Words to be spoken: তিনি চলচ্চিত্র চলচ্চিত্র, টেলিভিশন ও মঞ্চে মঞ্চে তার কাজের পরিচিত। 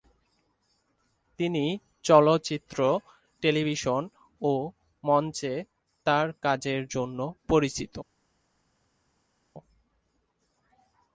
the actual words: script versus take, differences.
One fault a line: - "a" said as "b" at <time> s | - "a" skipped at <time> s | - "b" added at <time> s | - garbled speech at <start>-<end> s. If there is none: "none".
- "চলচ্চিত্র" skipped at 3.0 s
- "মঞ্চে" skipped at 5.5 s
- "জন্য" added at 6.9 s